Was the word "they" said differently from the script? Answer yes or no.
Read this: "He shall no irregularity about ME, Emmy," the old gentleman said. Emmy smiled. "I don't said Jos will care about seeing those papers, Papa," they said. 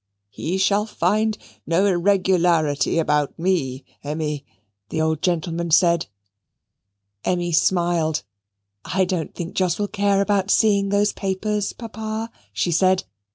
yes